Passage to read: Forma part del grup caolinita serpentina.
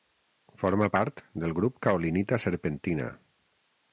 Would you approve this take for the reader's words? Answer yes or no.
yes